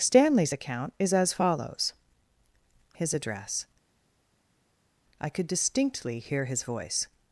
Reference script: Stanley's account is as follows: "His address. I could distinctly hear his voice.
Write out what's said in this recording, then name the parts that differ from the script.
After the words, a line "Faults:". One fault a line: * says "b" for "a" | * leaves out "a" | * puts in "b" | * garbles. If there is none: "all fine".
Stanley's account is as follows: "His address. I could distinctly hear his voice.
Faults:
all fine